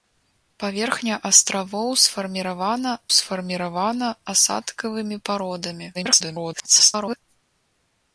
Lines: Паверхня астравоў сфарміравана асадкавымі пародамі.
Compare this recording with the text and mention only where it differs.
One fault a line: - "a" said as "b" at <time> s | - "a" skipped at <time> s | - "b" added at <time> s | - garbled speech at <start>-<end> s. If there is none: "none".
- "сфарміравана" added at 3.2 s
- garbled speech at 5.9-7.2 s